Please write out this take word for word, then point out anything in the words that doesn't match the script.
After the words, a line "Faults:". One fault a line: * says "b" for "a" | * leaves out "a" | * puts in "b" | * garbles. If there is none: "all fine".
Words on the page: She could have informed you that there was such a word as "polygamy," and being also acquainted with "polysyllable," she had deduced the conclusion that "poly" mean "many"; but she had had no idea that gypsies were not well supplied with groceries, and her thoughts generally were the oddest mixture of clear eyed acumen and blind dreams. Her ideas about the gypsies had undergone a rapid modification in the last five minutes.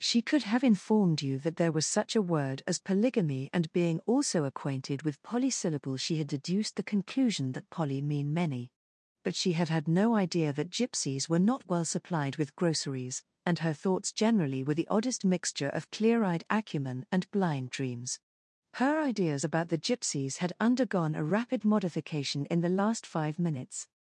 She could have informed you that there was such a word as "polygamy," and being also acquainted with "polysyllable," she had deduced the conclusion that "poly" mean "many"; but she had had no idea that gypsies were not well supplied with groceries, and her thoughts generally were the oddest mixture of clear eyed acumen and blind dreams. Her ideas about the gypsies had undergone a rapid modification in the last five minutes.
Faults:
all fine